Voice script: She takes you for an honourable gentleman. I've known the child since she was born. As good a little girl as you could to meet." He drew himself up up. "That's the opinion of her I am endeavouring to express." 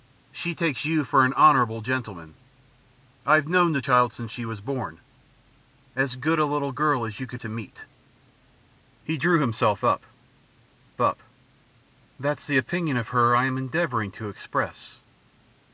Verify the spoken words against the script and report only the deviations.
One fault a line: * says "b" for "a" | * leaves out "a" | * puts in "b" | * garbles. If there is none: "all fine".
all fine